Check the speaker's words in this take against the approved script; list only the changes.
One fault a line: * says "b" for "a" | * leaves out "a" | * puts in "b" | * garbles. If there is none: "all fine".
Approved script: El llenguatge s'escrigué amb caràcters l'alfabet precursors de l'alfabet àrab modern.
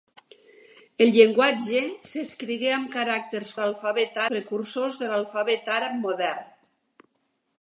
all fine